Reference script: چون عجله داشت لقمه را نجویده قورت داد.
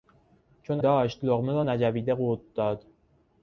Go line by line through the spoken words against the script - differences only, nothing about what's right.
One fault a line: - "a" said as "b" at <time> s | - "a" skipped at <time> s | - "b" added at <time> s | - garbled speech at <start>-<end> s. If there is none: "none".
- "عجله" skipped at 0.8 s